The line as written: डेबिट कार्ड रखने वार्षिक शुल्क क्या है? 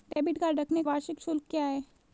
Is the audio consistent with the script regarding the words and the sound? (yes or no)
no